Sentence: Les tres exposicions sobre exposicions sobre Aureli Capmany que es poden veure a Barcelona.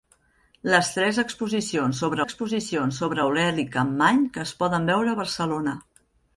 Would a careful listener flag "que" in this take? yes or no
no